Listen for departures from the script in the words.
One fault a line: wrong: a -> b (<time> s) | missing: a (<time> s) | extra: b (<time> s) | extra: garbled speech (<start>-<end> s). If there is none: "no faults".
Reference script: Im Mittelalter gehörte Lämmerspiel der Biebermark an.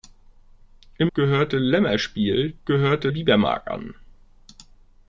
missing: Mittelalter (1.1 s)
wrong: der -> gehörte (2.7 s)